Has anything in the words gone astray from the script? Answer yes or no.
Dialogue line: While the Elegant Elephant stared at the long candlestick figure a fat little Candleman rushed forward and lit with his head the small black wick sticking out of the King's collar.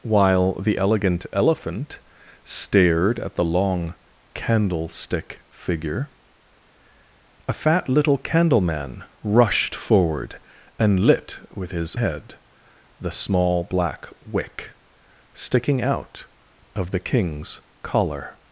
no